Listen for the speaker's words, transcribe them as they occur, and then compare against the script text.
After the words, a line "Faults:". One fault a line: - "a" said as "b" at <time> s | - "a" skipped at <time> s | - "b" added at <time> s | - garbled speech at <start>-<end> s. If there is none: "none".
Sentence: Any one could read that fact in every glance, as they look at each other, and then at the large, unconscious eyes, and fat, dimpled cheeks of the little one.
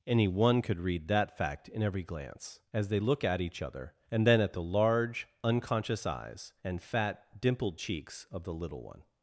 Any one could read that fact in every glance, as they look at each other, and then at the large, unconscious eyes, and fat, dimpled cheeks of the little one.
Faults:
none